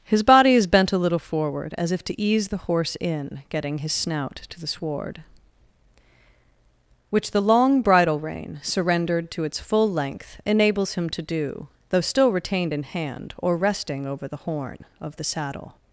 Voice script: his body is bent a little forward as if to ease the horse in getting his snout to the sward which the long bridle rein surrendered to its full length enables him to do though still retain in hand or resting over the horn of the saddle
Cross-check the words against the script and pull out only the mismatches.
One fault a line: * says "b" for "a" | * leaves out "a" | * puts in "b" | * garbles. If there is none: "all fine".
* says "retained" for "retain"